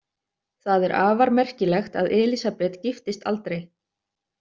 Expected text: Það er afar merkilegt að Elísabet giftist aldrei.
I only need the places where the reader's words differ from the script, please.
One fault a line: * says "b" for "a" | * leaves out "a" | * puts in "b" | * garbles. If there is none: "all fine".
all fine